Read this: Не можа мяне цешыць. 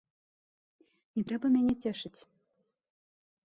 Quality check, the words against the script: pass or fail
fail